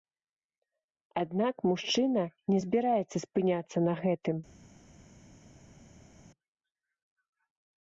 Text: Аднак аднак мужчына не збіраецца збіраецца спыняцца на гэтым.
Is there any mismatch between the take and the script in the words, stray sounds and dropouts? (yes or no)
yes